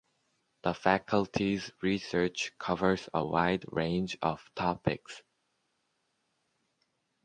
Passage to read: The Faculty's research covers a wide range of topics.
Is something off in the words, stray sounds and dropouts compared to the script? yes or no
no